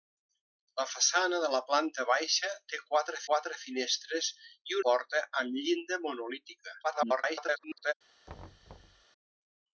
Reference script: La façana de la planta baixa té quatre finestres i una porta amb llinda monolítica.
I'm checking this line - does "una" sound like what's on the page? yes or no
no